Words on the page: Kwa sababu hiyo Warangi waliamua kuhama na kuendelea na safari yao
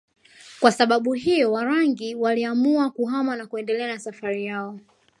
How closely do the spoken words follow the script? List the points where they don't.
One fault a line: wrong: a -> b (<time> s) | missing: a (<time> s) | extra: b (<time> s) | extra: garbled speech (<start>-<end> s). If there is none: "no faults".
no faults